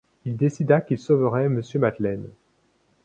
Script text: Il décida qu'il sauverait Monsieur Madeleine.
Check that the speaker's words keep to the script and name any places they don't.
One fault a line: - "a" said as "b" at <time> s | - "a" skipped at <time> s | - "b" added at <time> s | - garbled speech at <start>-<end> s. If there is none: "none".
none